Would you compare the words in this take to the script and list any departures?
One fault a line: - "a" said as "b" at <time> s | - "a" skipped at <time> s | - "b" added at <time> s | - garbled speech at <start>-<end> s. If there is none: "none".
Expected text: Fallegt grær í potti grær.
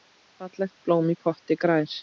- "grær" said as "blóm" at 0.9 s